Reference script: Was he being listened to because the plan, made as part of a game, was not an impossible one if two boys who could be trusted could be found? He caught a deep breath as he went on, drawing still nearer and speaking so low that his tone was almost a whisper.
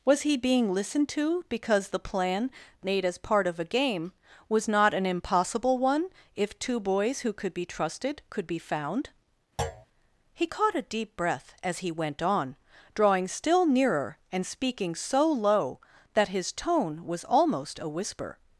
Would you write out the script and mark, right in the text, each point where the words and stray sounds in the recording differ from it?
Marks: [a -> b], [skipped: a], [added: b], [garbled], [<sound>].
Was he being listened to because the plan, made as part of a game, was not an impossible one if two boys who could be trusted could be found? [thud] He caught a deep breath as he went on, drawing still nearer and speaking so low that his tone was almost a whisper.